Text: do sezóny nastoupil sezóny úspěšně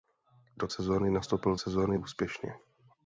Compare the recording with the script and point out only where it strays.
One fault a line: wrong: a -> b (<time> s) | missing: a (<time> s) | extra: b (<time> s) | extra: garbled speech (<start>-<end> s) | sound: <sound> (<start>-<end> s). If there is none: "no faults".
no faults